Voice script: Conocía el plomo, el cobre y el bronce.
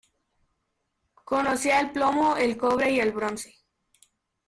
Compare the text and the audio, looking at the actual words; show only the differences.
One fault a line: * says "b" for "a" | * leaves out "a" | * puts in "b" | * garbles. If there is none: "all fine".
all fine